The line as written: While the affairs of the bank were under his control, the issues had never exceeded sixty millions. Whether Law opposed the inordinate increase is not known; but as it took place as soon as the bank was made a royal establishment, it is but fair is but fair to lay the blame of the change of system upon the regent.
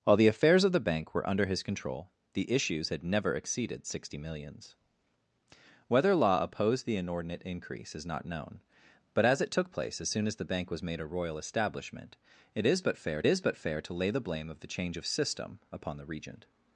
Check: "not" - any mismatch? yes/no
no